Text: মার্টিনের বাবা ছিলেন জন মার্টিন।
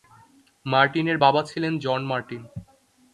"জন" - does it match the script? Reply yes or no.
yes